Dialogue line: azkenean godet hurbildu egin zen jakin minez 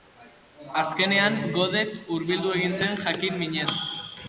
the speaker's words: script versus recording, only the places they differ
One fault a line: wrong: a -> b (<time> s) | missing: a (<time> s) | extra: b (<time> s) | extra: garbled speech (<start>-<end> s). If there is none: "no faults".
no faults